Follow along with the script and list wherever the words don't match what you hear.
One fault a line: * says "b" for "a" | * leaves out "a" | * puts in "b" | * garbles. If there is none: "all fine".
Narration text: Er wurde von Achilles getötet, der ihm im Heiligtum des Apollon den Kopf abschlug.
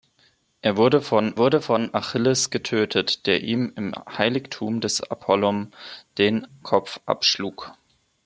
* puts in "wurde von"